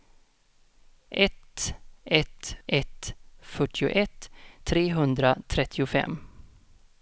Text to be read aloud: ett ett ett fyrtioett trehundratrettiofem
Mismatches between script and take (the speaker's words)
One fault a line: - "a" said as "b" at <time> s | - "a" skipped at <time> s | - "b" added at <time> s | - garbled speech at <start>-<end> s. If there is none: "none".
none